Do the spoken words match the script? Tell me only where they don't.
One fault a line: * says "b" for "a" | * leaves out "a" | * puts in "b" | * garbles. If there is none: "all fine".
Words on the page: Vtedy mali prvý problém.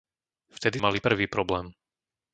all fine